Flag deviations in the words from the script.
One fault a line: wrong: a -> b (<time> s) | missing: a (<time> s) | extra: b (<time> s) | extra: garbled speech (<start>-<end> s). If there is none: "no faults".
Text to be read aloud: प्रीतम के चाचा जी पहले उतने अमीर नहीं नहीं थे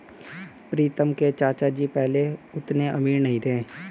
missing: नहीं (3.4 s)